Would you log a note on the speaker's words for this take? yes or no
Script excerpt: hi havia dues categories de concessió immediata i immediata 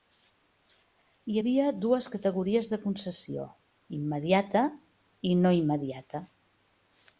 yes